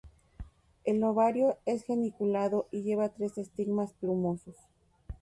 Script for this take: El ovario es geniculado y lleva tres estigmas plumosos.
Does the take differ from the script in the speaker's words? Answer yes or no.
no